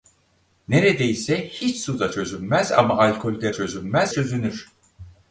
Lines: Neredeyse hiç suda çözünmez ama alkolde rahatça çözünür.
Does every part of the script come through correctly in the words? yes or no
no